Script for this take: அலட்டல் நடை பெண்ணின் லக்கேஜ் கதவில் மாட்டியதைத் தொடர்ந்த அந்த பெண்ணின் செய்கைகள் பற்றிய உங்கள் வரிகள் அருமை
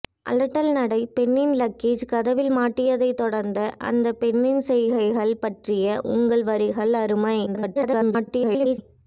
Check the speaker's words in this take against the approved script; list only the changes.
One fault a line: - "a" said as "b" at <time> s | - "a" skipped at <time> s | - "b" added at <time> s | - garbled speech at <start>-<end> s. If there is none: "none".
- garbled speech at 7.5-8.8 s